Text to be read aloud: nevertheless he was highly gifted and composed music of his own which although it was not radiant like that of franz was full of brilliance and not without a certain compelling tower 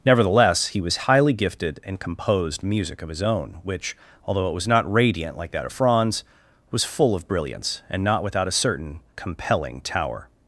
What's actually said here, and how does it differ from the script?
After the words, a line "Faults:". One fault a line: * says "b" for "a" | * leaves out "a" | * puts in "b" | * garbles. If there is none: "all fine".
nevertheless he was highly gifted and composed music of his own which although it was not radiant like that of franz was full of brilliance and not without a certain compelling tower
Faults:
all fine